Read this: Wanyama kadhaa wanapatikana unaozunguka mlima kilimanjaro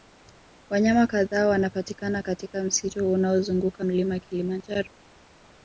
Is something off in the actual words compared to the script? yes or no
yes